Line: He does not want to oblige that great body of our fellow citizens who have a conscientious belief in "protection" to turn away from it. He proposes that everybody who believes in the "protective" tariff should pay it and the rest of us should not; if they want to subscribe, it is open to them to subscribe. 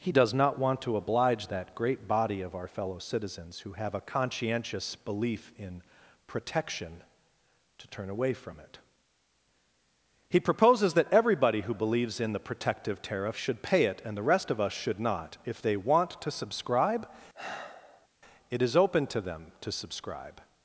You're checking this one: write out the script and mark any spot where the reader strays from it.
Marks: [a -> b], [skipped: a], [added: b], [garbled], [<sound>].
He does not want to oblige that great body of our fellow citizens who have a conscientious belief in "protection" to turn away from it. He proposes that everybody who believes in the "protective" tariff should pay it and the rest of us should not; if they want to subscribe, [sigh] it is open to them to subscribe.